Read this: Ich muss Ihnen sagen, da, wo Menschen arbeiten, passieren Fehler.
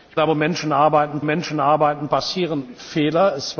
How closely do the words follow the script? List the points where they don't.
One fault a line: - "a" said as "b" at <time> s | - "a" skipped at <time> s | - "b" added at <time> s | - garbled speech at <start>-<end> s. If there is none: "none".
- "muss Ihnen sagen da wo" said as "da wo Menschen arbeiten" at 0.2 s